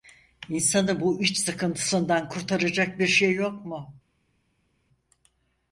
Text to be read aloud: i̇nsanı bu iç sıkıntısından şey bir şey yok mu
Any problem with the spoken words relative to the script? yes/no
yes